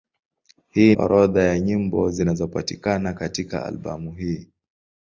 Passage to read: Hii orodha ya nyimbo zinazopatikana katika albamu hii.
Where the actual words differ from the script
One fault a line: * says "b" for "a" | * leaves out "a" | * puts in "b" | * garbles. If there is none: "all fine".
all fine